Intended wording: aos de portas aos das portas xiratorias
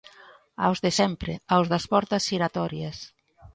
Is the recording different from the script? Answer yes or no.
yes